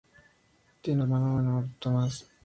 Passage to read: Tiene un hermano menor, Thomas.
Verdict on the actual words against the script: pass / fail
fail